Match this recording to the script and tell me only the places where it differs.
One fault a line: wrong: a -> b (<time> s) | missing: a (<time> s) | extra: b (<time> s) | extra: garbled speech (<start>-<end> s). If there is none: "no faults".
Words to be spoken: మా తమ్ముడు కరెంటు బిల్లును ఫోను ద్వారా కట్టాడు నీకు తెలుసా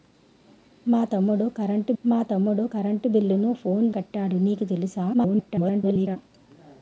extra: మా తమ్ముడు కరెంటు (2.0 s)
missing: ద్వారా (3.9 s)
extra: garbled speech (5.1-6.2 s)